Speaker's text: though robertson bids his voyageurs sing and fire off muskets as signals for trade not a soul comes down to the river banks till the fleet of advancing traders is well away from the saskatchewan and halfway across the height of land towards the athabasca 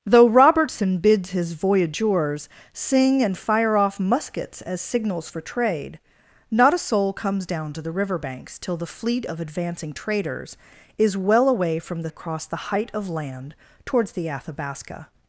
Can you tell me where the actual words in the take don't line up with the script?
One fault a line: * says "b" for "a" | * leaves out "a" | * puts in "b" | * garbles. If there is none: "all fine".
* leaves out "saskatchewan and halfway"